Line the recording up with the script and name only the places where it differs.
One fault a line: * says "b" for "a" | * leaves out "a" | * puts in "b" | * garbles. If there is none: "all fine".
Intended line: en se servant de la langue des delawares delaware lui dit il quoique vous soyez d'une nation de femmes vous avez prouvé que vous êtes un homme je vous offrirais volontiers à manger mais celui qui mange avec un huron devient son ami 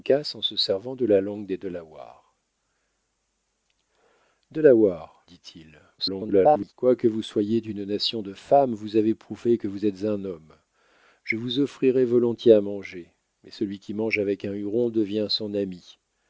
* leaves out "lui"
* garbles